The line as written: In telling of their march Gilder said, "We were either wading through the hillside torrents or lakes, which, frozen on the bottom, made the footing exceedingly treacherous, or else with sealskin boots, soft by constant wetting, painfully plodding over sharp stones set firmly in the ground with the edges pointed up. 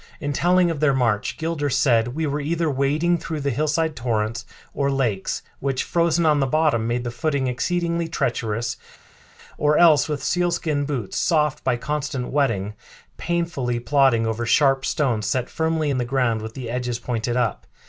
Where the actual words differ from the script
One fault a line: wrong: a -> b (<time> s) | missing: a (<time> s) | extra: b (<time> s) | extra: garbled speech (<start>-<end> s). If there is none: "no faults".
no faults